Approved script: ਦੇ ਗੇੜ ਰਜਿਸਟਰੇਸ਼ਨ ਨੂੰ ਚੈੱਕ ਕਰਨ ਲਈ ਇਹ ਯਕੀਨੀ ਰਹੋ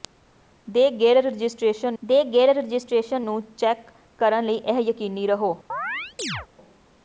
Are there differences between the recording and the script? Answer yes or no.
yes